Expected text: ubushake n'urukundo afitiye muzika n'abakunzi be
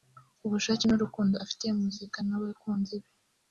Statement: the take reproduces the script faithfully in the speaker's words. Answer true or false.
true